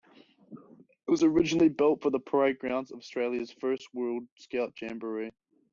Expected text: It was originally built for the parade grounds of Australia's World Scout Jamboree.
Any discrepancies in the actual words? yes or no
yes